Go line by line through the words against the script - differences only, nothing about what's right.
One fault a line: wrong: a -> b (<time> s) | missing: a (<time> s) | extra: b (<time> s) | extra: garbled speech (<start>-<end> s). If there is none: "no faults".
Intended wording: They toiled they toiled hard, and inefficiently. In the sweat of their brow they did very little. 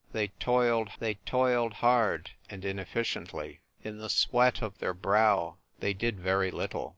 no faults